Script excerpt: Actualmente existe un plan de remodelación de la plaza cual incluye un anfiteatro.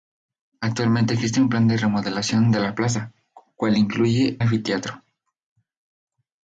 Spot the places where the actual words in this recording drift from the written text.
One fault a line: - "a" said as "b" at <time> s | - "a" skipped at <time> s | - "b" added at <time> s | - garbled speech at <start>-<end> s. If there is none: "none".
- "un" skipped at 4.4 s